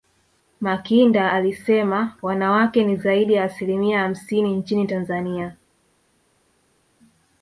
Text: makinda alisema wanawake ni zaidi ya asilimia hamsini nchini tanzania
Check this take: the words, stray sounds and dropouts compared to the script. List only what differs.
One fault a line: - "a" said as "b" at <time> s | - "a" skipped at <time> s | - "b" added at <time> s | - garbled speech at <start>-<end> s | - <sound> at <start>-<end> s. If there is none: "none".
none